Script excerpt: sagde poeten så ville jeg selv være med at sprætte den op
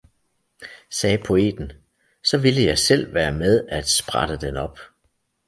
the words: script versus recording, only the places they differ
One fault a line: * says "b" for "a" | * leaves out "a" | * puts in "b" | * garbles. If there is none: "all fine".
all fine